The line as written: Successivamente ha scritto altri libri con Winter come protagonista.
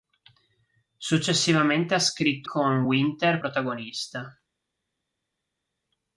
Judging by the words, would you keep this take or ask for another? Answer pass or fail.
fail